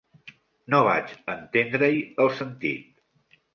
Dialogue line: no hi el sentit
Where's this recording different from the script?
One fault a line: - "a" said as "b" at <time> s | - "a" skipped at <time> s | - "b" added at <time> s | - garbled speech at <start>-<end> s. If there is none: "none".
- "vaig entendre" added at 0.9 s